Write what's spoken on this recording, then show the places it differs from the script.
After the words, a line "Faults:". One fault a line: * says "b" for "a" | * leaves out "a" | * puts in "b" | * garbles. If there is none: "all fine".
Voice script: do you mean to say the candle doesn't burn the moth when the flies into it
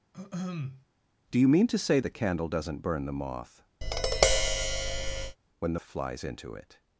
do you mean to say the candle doesn't burn the moth when the flies into it
Faults:
all fine